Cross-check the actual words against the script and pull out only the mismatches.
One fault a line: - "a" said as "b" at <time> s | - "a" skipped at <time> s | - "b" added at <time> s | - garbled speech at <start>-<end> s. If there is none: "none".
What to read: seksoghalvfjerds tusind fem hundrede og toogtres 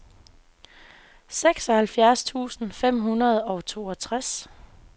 none